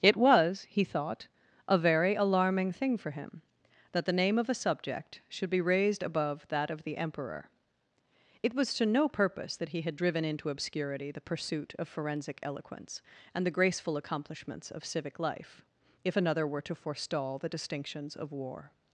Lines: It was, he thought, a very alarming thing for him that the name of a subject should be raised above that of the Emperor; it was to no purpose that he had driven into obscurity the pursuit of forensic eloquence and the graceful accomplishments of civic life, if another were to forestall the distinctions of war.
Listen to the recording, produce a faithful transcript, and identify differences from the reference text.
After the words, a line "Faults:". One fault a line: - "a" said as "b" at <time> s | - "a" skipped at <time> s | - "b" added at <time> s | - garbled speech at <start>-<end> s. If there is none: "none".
It was, he thought, a very alarming thing for him that the name of a subject should be raised above that of the Emperor; it was to no purpose that he had driven into obscurity the pursuit of forensic eloquence and the graceful accomplishments of civic life, if another were to forestall the distinctions of war.
Faults:
none